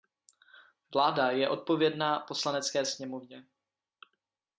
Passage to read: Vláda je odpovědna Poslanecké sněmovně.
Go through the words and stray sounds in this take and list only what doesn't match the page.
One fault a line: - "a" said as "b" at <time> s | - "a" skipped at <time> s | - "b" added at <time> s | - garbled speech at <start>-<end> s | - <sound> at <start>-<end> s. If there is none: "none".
none